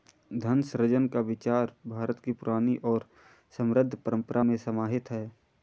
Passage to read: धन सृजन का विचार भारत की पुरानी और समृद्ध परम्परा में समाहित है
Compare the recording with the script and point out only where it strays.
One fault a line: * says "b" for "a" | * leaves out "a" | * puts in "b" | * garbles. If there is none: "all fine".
all fine